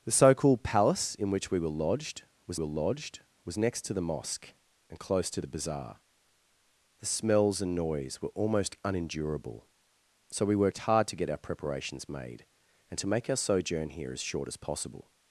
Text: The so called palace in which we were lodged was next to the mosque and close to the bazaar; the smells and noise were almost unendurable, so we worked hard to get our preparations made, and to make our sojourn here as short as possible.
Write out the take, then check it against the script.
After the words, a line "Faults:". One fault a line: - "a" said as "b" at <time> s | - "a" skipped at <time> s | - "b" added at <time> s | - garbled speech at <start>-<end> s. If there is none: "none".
The so called palace in which we were lodged was were lodged was next to the mosque and close to the bazaar; the smells and noise were almost unendurable, so we worked hard to get our preparations made, and to make our sojourn here as short as possible.
Faults:
- "were lodged was" added at 2.6 s